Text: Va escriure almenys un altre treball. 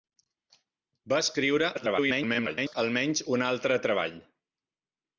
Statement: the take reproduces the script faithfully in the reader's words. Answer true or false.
false